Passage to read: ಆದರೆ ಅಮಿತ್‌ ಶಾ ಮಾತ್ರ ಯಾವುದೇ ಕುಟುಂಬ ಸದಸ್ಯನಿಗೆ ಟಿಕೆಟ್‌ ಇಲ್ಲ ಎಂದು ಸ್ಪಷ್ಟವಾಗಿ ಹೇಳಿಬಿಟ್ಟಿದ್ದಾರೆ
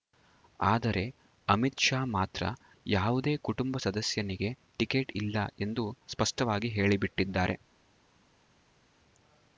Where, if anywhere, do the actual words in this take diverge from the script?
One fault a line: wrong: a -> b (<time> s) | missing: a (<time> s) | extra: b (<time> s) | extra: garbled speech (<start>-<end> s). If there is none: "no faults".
no faults